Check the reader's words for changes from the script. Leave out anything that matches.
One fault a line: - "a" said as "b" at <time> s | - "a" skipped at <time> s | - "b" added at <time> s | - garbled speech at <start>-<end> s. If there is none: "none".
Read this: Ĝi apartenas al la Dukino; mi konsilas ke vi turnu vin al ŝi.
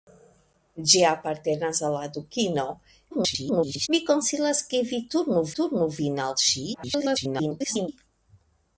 - garbled speech at 3.1-3.9 s
- "turnu" added at 5.6 s
- garbled speech at 6.7-7.9 s